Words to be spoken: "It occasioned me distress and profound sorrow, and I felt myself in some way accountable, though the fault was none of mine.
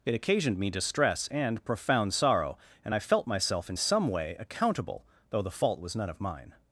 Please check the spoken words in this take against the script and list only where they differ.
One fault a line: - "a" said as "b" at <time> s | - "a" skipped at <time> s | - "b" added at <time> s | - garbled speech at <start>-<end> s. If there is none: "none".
none